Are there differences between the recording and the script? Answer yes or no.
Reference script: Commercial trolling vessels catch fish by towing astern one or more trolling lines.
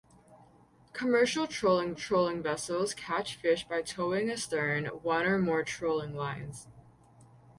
yes